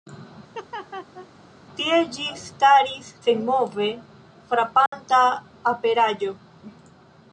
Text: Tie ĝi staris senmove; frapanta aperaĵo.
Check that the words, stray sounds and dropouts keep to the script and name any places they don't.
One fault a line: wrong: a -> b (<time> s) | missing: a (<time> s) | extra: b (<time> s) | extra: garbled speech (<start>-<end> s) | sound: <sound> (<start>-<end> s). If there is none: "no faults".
sound: laugh (0.5-1.3 s)
sound: dropout (4.9-4.9 s)